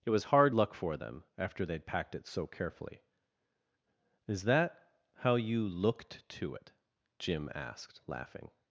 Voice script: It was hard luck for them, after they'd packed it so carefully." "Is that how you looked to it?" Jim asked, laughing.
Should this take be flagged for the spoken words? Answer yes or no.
no